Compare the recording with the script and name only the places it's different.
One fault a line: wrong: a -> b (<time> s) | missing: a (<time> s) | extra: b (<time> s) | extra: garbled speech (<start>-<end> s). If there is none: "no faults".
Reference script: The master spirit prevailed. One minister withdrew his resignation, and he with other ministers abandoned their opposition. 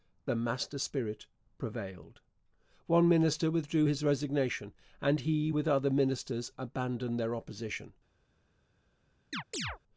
no faults